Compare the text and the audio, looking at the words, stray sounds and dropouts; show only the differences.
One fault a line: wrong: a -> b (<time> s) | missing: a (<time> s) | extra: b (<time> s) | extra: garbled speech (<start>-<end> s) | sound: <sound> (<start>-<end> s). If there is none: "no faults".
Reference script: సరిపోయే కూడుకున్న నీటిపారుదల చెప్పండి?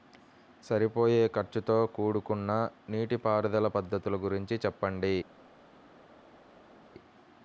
extra: ఖర్చుతో (1.3 s)
extra: పద్ధతుల గురించి (3.7 s)